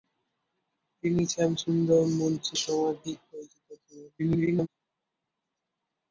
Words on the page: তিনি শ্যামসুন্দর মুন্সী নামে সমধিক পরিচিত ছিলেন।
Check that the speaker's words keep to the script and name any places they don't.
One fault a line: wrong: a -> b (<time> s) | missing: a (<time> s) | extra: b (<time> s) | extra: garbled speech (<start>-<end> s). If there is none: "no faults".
missing: নামে (2.5 s)
extra: garbled speech (4.2-4.7 s)